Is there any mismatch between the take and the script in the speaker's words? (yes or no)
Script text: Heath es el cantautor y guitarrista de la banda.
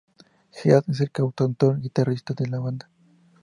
no